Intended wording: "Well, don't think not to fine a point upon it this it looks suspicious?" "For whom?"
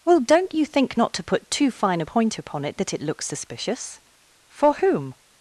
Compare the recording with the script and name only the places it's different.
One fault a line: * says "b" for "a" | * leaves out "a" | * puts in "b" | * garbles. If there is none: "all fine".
* puts in "you"
* puts in "put too"
* says "that" for "this"